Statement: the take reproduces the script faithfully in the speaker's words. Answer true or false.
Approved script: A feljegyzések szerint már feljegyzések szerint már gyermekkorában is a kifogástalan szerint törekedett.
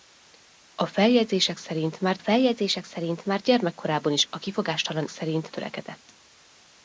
true